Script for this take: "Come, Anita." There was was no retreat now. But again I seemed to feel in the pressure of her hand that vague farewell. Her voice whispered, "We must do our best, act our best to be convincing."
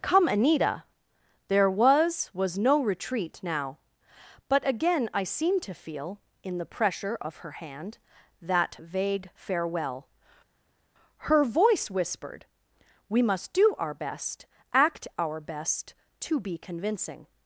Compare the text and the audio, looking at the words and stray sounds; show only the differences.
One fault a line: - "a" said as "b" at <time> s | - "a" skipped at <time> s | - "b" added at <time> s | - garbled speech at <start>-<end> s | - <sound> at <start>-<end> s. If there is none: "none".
none